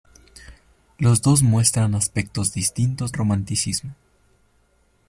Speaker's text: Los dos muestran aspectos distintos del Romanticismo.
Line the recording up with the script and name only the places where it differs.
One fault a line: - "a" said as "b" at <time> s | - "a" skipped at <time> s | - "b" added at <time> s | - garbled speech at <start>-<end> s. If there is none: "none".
- "del" skipped at 3.1 s